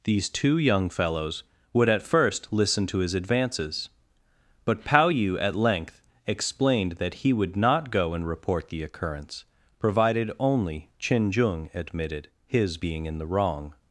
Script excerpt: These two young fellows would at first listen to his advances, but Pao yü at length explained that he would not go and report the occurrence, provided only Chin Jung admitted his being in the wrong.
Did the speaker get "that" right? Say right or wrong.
right